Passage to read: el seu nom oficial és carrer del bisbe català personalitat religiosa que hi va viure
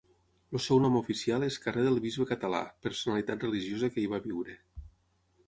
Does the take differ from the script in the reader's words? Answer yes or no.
no